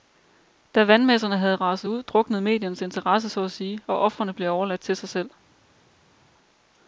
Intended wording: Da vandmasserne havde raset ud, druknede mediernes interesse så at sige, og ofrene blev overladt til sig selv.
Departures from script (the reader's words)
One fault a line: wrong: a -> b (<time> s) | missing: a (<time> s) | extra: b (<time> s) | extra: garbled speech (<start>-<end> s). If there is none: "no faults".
no faults